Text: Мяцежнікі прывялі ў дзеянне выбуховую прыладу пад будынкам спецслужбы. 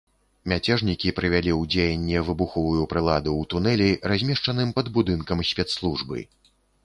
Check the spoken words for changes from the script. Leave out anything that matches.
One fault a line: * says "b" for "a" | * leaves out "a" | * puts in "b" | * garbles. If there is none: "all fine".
* puts in "ў тунэлі размешчаным"